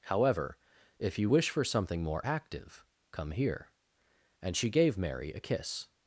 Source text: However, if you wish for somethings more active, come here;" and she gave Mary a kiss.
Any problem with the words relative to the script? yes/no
yes